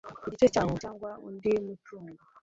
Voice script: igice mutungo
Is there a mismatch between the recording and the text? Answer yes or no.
yes